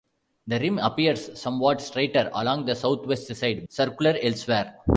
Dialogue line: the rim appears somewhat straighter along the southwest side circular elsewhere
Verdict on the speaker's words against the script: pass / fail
pass